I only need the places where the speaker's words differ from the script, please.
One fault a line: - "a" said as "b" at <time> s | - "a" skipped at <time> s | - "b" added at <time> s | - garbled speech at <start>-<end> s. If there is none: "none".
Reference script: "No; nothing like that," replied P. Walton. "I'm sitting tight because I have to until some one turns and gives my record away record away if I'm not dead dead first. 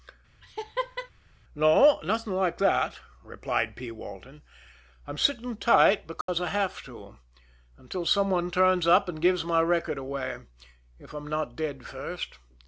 - "up" added at 8.9 s
- "record away" skipped at 10.4 s
- "dead" skipped at 11.9 s